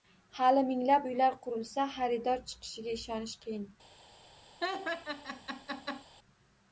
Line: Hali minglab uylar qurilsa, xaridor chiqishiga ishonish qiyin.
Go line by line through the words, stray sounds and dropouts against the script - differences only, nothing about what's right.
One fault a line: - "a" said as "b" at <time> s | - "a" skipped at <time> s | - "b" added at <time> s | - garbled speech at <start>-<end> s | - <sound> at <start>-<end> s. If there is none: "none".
- laugh at 4.6-6.0 s